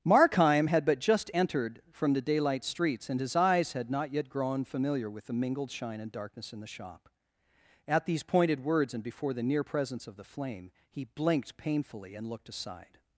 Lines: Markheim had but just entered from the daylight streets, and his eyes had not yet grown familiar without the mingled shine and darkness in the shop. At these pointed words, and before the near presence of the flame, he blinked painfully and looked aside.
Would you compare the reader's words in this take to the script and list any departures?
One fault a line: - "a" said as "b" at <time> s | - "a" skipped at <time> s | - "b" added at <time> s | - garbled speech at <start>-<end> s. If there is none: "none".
- "without" said as "with" at 5.1 s